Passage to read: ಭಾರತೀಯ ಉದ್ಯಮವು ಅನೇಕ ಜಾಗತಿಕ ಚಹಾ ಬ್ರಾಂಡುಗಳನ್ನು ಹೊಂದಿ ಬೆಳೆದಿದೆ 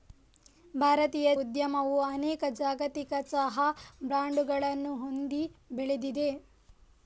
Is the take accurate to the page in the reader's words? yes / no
yes